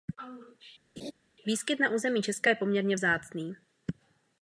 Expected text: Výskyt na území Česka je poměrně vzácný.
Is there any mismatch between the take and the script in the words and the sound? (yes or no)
yes